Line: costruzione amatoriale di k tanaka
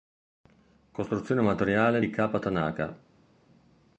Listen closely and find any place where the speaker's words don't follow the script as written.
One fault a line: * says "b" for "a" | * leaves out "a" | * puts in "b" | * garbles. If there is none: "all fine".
all fine